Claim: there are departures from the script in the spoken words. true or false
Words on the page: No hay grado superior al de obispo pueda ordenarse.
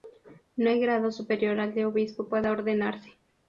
false